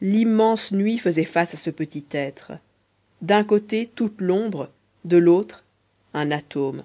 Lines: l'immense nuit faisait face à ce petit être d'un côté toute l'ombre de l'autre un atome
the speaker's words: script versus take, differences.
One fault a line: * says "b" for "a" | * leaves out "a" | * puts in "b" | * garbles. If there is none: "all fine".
all fine